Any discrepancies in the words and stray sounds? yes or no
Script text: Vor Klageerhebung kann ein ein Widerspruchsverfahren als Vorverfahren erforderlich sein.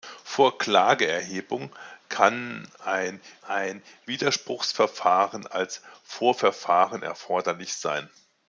no